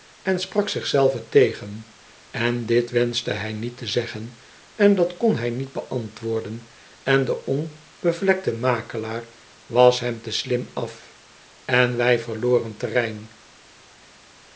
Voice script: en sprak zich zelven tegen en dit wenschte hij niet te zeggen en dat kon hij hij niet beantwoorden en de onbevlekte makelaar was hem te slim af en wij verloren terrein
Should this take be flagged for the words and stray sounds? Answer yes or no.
yes